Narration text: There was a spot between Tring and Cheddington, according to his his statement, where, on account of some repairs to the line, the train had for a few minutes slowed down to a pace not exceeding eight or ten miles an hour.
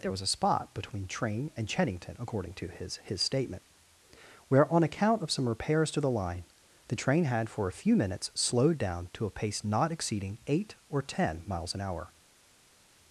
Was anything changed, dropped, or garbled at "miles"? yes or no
no